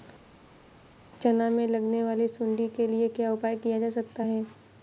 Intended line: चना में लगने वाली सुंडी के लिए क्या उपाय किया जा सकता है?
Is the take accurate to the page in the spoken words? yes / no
yes